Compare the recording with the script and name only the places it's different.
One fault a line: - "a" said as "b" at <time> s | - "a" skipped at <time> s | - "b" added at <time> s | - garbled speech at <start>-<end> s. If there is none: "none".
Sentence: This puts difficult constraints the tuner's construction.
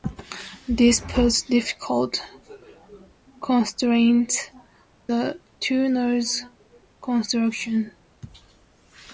none